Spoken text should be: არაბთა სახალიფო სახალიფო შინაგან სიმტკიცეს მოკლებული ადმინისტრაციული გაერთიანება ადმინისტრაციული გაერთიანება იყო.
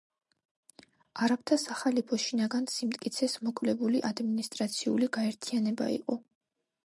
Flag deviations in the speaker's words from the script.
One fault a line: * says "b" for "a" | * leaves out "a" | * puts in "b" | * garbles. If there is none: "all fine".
* leaves out "სახალიფო"
* leaves out "ადმინისტრაციული გაერთიანება"